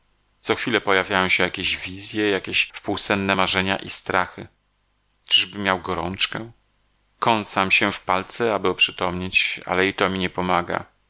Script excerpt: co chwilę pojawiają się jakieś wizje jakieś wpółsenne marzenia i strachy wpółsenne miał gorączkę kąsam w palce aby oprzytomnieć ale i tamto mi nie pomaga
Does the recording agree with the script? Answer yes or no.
no